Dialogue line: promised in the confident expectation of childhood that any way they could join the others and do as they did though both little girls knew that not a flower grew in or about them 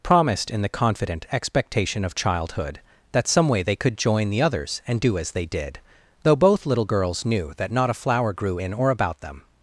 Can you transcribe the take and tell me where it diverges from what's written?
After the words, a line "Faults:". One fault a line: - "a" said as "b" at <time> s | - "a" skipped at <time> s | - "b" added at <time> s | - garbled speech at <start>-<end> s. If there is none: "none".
promised in the confident expectation of childhood that some way they could join the others and do as they did though both little girls knew that not a flower grew in or about them
Faults:
- "any" said as "some" at 3.3 s